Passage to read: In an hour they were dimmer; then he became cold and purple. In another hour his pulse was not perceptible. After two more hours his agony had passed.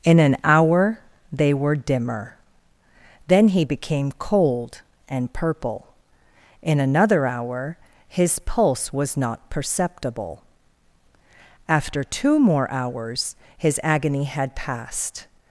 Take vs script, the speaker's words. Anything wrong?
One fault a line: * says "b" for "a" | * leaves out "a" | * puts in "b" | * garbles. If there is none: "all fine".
all fine